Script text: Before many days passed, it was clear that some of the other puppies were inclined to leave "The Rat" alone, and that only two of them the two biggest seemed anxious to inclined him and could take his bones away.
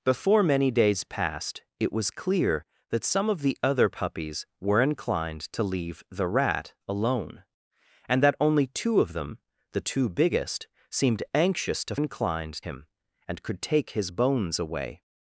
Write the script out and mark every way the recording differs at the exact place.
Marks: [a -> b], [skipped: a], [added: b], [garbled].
Before many days passed, it was clear that some of the other puppies were inclined to leave "The Rat" alone, and that only two of them the two biggest seemed anxious to inclined him and could take his bones away.